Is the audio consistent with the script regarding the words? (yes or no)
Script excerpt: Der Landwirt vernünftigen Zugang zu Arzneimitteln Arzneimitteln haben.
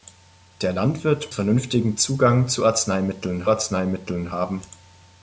yes